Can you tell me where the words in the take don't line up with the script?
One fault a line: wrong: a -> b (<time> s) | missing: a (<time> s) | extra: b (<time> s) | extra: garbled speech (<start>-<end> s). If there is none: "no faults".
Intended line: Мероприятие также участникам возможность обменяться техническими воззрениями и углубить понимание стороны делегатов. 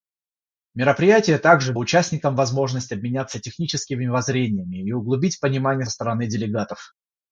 no faults